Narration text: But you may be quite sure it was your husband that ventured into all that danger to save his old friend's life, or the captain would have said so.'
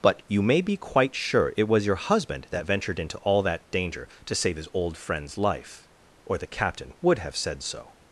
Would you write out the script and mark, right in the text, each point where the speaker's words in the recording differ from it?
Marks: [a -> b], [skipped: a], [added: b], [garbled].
But you may be quite sure it was your husband that ventured into all that danger to save his old friend's life, or the captain would have said so.'